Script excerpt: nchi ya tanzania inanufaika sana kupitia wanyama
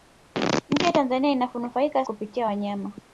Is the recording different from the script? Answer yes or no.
yes